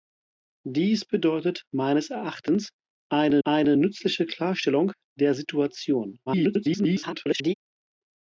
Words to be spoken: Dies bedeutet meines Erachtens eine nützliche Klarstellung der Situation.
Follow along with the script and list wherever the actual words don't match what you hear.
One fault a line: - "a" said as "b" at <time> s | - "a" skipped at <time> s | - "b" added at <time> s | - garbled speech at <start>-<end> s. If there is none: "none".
- "eine" added at 3.4 s
- garbled speech at 6.3-7.5 s